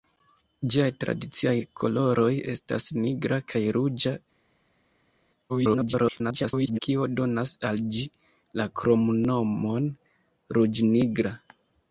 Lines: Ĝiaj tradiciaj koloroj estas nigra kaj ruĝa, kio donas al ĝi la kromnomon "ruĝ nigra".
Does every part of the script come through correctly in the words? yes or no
no